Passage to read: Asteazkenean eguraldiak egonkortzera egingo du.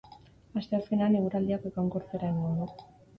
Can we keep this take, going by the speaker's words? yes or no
yes